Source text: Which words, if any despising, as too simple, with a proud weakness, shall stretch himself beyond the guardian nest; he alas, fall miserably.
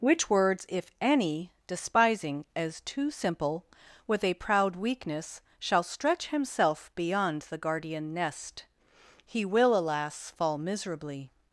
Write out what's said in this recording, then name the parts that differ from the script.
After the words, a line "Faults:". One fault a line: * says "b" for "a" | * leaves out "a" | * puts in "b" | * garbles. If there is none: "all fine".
Which words, if any despising, as too simple, with a proud weakness, shall stretch himself beyond the guardian nest; he will, alas, fall miserably.
Faults:
* puts in "will"